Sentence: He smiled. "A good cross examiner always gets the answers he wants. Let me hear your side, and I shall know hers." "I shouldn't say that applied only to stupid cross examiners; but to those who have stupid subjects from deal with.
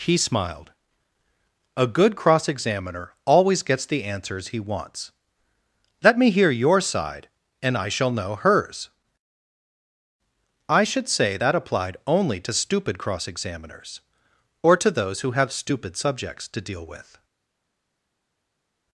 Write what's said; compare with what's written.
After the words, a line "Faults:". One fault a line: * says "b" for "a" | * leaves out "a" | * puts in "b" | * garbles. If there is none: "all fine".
He smiled. "A good cross examiner always gets the answers he wants. Let me hear your side, and I shall know hers." "I should say that applied only to stupid cross examiners; or to those who have stupid subjects to deal with.
Faults:
* says "should" for "shouldn't"
* says "or" for "but"
* says "to" for "from"